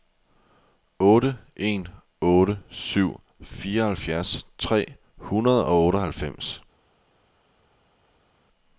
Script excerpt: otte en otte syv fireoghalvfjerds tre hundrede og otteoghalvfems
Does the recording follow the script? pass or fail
pass